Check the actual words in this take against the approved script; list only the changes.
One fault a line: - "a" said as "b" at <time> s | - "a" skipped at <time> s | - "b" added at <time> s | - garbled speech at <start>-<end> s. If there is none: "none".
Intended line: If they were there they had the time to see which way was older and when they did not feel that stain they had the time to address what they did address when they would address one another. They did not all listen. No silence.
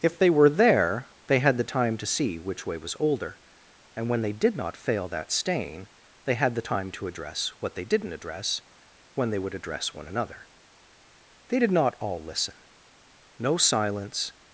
- "feel" said as "fail" at 4.8 s
- "did" said as "didn't" at 7.8 s